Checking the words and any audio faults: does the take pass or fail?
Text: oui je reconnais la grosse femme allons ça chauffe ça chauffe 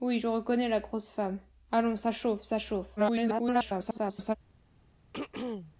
fail